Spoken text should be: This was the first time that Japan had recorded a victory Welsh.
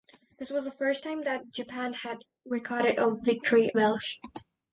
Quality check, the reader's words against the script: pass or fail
pass